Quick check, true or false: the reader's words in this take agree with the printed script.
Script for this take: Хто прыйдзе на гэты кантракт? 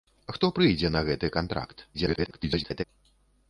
false